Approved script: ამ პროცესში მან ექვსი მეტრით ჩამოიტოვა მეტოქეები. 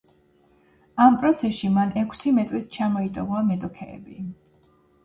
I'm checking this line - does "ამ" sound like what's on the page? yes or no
yes